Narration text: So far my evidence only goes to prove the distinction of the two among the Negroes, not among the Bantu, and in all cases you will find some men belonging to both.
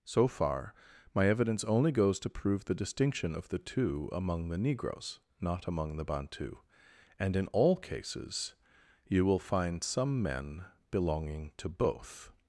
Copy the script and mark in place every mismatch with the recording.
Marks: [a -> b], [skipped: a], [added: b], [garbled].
So far my evidence only goes to prove the distinction of the two among the Negroes, not among the Bantu, and in all cases you will find some men belonging to both.